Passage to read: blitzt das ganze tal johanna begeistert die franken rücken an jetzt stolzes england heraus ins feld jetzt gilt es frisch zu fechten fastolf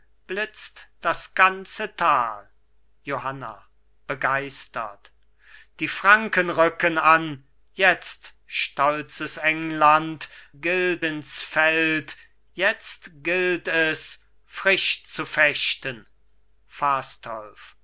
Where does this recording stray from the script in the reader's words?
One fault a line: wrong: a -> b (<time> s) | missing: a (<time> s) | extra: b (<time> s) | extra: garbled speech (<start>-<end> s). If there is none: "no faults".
wrong: heraus -> gilt (10.6 s)